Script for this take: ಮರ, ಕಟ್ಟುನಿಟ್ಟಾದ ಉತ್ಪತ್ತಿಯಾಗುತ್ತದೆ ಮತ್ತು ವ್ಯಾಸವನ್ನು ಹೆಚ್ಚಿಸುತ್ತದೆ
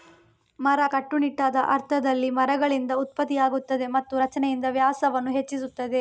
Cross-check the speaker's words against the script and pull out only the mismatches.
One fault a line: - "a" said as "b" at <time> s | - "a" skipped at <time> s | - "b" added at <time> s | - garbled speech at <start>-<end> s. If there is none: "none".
- "ಅರ್ಥದಲ್ಲಿ ಮರಗಳಿಂದ" added at 1.7 s
- "ರಚನೆಯಿಂದ" added at 4.2 s